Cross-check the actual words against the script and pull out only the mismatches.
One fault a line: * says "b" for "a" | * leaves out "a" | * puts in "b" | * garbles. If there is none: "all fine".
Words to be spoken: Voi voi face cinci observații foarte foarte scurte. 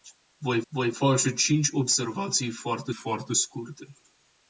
all fine